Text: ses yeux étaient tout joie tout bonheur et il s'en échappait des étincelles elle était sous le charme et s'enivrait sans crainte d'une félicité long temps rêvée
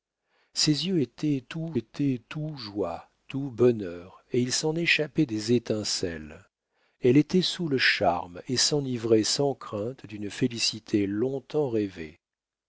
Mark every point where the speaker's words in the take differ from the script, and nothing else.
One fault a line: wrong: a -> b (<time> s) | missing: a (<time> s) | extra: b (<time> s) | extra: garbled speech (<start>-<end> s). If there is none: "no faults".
extra: étaient tout (1.7 s)